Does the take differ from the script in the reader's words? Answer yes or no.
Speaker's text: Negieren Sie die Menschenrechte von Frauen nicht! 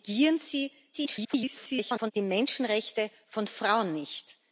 yes